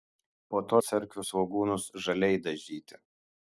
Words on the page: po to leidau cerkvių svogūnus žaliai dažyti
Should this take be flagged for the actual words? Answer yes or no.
yes